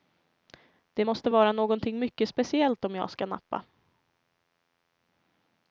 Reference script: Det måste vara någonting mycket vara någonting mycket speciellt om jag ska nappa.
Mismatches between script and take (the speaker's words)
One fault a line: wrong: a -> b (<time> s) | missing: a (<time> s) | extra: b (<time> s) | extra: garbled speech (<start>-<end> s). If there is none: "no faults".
missing: vara någonting mycket (2.3 s)